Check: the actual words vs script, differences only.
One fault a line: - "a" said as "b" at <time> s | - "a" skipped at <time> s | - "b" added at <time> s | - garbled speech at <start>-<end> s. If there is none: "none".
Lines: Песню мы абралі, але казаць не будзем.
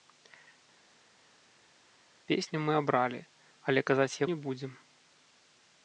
none